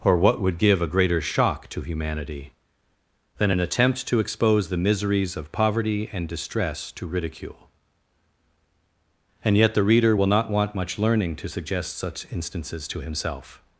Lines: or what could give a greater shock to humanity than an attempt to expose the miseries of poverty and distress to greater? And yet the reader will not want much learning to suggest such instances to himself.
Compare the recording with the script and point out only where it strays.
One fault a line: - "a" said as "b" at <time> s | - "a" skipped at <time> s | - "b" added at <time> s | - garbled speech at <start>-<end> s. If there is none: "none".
- "could" said as "would" at 0.4 s
- "greater" said as "ridicule" at 7.1 s